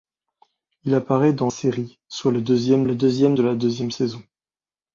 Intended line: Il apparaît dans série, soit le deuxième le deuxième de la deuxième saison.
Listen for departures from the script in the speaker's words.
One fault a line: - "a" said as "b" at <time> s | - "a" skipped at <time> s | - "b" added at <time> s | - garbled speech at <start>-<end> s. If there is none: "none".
none